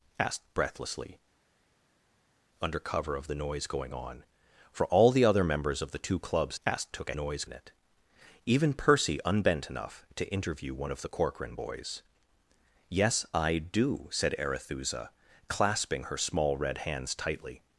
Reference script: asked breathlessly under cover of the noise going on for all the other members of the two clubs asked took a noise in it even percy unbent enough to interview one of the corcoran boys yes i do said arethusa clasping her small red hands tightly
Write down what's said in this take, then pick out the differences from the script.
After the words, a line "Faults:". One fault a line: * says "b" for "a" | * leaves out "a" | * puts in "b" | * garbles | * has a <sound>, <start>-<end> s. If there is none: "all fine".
asked breathlessly under cover of the noise going on for all the other members of the two clubs asked took a noise in it even percy unbent enough to interview one of the corcoran boys yes i do said arethusa clasping her small red hands tightly
Faults:
all fine